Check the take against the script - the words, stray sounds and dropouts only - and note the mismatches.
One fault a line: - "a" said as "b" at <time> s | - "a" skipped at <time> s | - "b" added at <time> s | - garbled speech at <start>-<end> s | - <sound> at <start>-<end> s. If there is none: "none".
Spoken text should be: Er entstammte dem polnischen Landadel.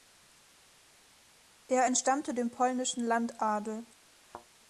- thud at 4.2-4.5 s